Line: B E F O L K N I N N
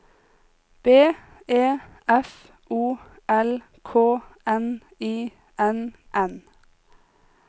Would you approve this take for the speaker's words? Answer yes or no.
yes